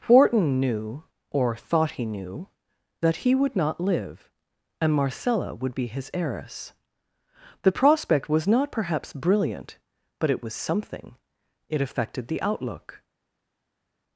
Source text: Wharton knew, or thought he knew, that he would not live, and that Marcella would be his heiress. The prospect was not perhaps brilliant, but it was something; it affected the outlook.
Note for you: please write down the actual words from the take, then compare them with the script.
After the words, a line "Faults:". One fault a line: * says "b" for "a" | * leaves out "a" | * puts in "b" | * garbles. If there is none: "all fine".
Wharton knew, or thought he knew, that he would not live, and Marcella would be his heiress. The prospect was not perhaps brilliant, but it was something; it affected the outlook.
Faults:
* leaves out "that"